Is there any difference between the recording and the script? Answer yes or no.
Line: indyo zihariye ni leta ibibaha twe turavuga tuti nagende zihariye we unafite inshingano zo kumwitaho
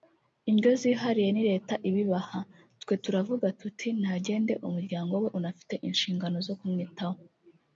yes